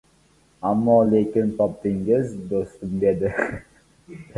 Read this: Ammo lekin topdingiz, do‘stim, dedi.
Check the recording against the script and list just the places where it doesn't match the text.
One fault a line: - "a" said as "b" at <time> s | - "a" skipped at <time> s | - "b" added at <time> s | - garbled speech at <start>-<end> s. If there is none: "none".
none